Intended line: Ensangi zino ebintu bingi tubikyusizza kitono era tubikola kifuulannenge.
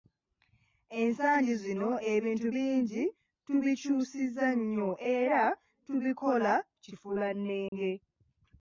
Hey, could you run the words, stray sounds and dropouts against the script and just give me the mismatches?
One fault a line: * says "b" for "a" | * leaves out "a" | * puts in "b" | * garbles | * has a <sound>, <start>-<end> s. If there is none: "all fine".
* says "nnyo" for "kitono"
* has a dropout, 7.7-7.7 s